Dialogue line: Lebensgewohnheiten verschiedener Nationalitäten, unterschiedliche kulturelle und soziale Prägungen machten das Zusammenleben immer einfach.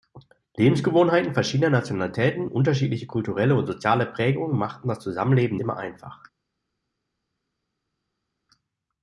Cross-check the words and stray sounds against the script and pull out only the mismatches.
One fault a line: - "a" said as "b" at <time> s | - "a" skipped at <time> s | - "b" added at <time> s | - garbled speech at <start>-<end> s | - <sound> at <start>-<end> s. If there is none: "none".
none